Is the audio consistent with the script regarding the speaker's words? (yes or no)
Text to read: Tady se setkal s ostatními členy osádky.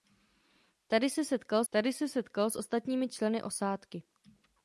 no